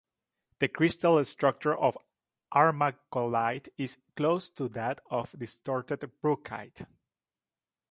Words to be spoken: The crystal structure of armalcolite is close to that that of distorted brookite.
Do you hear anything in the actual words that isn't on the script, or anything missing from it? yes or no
yes